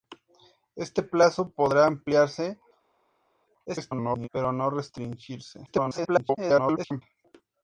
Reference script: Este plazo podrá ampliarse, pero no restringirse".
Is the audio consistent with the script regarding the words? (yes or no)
no